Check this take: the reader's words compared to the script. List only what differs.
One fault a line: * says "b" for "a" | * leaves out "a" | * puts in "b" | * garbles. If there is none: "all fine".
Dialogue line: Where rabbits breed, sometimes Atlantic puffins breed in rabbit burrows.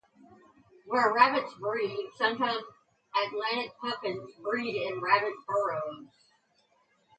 all fine